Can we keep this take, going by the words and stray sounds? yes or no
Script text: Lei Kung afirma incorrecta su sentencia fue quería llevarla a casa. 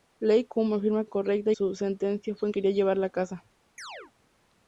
no